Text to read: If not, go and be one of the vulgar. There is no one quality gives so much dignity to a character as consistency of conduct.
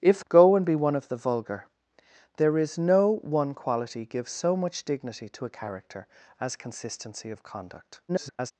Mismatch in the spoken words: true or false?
true